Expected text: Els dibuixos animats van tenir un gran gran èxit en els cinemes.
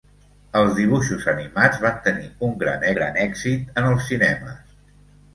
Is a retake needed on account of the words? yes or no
no